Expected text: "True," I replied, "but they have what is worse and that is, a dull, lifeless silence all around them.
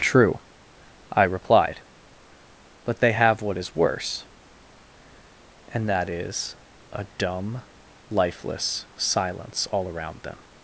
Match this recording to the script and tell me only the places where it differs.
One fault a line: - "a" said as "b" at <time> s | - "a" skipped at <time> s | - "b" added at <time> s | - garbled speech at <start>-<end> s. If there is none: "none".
- "dull" said as "dumb" at 7.2 s